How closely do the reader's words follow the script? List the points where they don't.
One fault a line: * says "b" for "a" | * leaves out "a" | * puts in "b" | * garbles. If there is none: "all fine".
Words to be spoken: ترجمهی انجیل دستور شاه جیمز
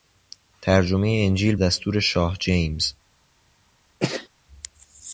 all fine